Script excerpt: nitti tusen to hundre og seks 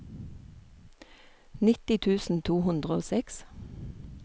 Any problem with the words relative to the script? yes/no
no